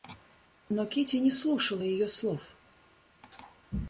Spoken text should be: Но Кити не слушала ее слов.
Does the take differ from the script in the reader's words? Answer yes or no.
no